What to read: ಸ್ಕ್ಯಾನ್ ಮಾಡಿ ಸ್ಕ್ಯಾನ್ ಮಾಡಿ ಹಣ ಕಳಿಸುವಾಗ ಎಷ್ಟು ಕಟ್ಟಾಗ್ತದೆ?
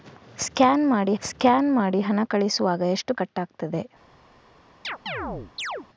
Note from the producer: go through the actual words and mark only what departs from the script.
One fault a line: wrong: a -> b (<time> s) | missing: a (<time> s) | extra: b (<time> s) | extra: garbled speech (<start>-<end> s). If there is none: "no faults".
no faults